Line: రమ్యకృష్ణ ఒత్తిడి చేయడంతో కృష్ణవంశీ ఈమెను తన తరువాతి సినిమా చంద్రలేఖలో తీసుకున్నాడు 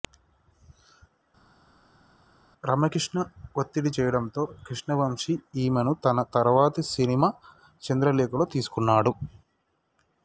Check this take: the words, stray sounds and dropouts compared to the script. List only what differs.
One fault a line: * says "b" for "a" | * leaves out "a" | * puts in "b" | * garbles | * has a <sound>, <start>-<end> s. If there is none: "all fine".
all fine